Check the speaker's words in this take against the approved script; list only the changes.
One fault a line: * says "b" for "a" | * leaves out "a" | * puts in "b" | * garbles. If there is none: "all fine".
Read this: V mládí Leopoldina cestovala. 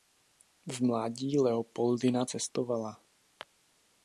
all fine